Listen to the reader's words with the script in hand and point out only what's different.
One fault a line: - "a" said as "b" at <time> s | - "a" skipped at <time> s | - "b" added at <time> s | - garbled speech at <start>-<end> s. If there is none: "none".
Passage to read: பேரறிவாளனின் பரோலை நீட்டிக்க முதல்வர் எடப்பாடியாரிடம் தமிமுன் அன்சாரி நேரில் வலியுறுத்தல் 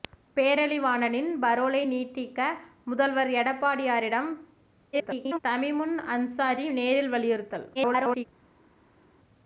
- garbled speech at 4.9-5.4 s
- garbled speech at 7.8-8.3 s